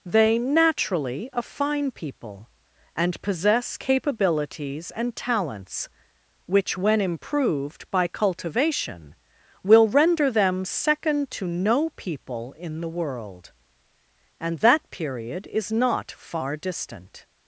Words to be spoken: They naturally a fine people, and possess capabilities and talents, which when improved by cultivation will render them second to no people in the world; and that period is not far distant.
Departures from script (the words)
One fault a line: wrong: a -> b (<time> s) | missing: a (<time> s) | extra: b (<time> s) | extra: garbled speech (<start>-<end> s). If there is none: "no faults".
no faults